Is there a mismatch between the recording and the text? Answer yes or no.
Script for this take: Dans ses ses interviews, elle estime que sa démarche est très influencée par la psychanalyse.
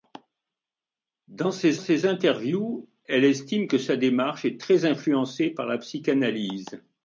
no